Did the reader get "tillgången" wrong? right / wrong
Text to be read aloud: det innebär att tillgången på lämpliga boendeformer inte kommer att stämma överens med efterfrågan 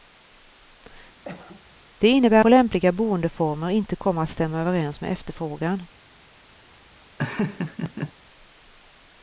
wrong